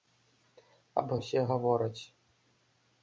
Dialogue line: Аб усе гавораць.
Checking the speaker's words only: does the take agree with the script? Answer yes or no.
yes